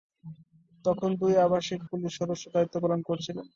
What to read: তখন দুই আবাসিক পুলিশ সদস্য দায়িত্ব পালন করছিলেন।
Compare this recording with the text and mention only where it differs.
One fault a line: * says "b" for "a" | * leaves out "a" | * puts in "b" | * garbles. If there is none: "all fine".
all fine